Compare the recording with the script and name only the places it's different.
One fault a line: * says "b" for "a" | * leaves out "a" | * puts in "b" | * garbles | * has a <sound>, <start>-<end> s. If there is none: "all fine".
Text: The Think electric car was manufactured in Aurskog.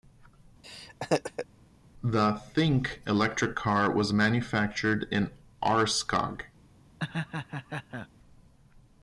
* has a laugh, 0.6-1.5 s
* has a laugh, 7.0-8.1 s